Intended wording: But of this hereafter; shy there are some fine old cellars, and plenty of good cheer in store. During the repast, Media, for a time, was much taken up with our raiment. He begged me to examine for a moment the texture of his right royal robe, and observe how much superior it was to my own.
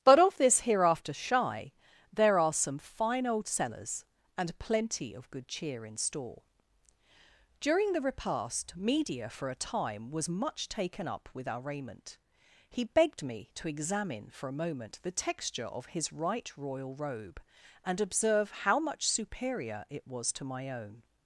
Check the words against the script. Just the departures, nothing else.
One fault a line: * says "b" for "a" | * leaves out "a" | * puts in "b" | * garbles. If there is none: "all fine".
all fine